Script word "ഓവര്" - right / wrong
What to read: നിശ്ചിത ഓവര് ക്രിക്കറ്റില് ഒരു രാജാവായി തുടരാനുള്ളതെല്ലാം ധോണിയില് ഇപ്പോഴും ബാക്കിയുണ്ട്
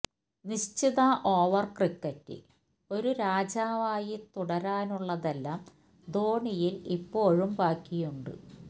right